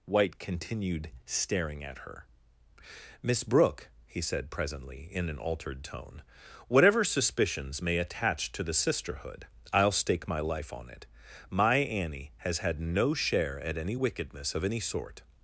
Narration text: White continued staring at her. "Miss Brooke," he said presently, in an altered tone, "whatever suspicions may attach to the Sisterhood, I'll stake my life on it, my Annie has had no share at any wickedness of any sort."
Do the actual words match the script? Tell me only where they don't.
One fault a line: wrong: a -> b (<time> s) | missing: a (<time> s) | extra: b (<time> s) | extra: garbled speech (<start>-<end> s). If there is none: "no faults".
no faults